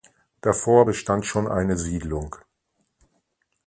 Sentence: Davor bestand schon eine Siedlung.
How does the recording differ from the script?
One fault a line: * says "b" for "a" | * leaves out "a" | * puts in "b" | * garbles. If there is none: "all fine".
all fine